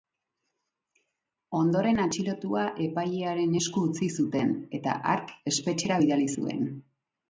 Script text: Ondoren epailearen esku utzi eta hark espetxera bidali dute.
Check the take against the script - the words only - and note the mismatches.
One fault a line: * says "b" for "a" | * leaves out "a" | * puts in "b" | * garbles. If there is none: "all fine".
* puts in "atxilotua"
* puts in "zuten"
* says "zuen" for "dute"